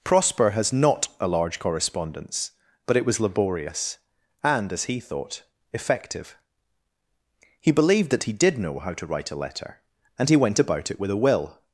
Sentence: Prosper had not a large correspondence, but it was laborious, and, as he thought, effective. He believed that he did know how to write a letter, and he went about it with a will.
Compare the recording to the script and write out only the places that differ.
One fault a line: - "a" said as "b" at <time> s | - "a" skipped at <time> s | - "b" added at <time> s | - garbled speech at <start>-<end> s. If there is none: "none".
- "had" said as "has" at 0.5 s